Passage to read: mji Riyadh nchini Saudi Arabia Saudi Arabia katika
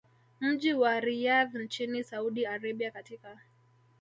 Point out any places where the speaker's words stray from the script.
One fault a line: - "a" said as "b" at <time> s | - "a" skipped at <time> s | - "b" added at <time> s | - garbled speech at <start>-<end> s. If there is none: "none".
- "wa" added at 0.7 s
- "Saudi Arabia" skipped at 2.9 s